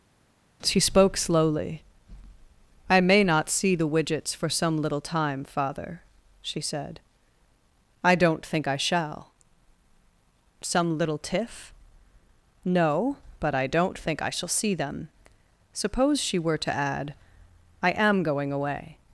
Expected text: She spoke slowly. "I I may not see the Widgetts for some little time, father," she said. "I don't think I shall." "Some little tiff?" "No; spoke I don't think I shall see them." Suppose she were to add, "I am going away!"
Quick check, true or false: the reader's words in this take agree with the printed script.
false